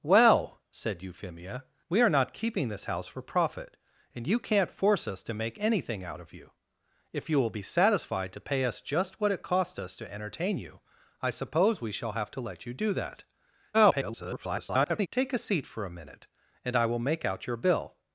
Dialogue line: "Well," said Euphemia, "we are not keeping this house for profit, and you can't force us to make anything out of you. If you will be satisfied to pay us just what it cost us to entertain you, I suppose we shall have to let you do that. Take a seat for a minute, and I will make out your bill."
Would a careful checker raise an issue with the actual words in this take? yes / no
yes